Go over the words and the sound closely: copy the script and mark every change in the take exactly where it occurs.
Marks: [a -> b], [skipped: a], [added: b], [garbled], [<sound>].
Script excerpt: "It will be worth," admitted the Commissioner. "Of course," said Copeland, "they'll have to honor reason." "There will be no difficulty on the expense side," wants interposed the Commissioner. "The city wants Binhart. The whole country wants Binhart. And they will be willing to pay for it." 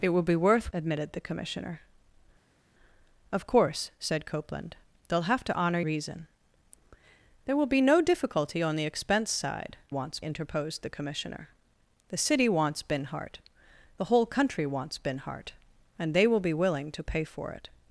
"It will be worth," admitted the Commissioner. "Of course," said Copeland, "they'll have to honor reason." "There will be no difficulty on the expense side," wants interposed the Commissioner. "The city wants Binhart. The whole country wants Binhart. And they will be willing to pay for it."